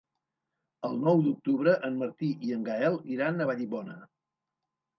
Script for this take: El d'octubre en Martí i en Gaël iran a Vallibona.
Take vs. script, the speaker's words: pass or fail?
fail